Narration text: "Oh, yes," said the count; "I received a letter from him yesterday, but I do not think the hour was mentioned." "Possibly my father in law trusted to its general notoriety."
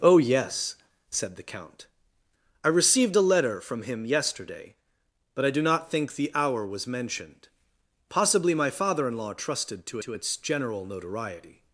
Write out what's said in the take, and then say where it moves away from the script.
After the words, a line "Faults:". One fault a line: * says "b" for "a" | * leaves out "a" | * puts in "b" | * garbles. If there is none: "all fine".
"Oh, yes," said the count; "I received a letter from him yesterday, but I do not think the hour was mentioned." "Possibly my father in law trusted to to its general notoriety."
Faults:
* puts in "to"